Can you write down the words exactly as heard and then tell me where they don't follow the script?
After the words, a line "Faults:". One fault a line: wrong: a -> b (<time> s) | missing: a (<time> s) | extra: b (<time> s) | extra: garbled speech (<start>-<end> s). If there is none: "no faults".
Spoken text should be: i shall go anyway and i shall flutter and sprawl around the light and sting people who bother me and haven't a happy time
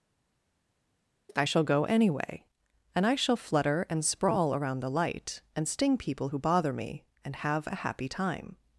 i shall go anyway and i shall flutter and sprawl around the light and sting people who bother me and have a happy time
Faults:
wrong: haven't -> have (7.4 s)